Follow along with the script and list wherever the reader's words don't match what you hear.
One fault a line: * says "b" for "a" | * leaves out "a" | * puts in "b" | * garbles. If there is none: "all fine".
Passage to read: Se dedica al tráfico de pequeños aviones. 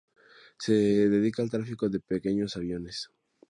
all fine